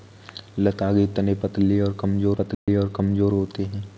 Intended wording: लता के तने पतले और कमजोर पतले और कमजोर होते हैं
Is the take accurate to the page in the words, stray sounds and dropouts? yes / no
no